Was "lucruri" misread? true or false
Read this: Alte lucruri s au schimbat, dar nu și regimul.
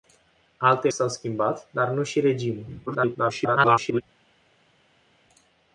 true